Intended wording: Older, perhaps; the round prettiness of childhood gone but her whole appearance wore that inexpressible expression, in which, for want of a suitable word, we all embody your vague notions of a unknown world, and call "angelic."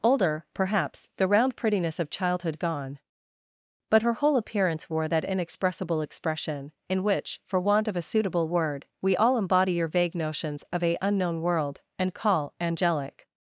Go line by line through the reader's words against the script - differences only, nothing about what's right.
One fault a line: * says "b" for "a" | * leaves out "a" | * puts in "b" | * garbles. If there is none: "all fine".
all fine